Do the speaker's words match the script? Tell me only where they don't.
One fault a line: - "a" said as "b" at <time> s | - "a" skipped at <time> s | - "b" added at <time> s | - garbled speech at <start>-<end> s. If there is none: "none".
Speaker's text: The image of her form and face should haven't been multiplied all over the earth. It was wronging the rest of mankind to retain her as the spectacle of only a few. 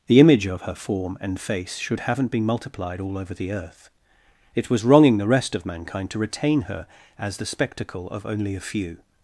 none